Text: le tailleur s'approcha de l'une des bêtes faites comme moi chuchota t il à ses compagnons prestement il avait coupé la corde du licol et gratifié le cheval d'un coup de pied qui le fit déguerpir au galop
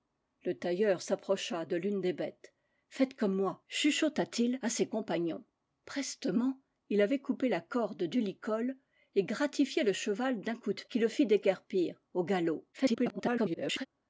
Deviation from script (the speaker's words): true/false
true